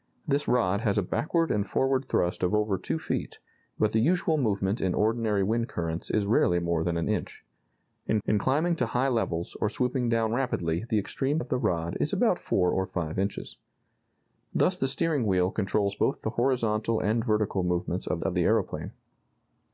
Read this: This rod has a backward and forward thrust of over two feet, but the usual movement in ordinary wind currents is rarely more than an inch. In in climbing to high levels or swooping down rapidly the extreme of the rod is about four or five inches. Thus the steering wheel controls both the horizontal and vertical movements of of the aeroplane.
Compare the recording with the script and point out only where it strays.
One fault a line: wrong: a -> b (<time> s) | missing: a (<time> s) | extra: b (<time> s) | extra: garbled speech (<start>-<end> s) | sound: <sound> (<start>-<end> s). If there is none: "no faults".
no faults